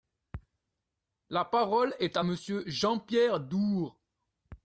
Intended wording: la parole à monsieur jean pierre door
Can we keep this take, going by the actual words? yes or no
no